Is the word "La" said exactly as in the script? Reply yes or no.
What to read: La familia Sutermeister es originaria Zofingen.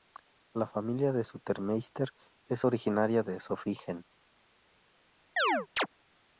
yes